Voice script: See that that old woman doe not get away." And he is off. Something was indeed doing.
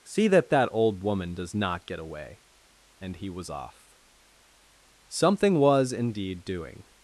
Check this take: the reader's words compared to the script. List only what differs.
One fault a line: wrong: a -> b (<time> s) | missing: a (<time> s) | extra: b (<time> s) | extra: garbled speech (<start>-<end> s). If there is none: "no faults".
wrong: doe -> does (1.4 s)
wrong: is -> was (3.3 s)